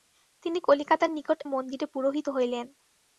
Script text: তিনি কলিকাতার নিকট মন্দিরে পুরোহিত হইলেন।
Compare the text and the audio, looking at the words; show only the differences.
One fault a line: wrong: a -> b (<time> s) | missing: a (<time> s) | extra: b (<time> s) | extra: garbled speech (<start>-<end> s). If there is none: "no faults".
no faults